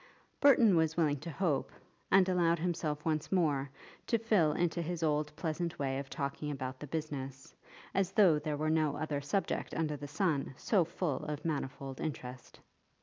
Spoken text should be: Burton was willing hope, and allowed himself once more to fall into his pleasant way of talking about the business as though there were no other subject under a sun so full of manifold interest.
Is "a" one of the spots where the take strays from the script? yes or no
yes